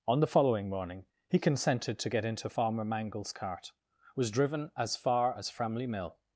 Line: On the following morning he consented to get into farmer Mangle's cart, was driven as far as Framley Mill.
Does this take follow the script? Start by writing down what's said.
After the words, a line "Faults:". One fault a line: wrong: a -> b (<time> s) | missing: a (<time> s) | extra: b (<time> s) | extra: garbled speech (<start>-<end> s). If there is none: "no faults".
On the following morning he consented to get into farmer Mangle's cart, was driven as far as Framley Mill.
Faults:
no faults